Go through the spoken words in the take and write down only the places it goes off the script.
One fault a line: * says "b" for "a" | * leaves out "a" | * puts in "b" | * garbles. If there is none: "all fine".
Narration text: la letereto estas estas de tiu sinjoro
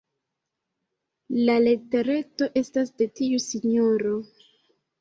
* leaves out "estas"